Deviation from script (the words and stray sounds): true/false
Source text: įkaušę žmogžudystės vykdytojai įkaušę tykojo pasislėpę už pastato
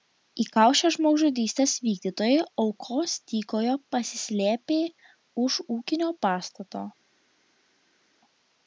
true